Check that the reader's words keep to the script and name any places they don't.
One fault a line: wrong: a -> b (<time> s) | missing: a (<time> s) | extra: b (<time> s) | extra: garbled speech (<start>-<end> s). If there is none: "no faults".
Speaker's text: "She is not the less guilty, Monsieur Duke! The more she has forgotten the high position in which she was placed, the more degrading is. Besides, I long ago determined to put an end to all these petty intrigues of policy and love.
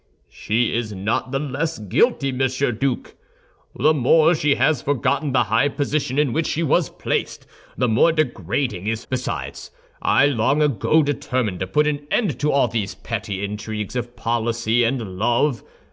no faults